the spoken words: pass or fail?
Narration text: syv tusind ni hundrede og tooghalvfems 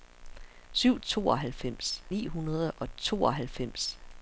fail